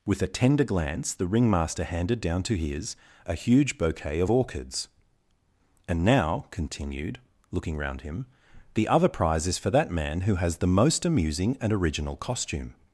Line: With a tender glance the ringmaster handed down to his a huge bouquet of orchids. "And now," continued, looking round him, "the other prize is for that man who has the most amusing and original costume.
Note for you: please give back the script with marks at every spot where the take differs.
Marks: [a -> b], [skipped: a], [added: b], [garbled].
With a tender glance the ringmaster handed down to his a huge bouquet of orchids. "And now," continued, looking round him, "the other prize is for that man who has the most amusing and original costume.